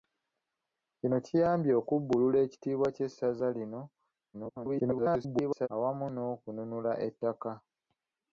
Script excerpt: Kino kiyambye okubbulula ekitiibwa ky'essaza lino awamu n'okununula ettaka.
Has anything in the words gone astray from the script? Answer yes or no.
yes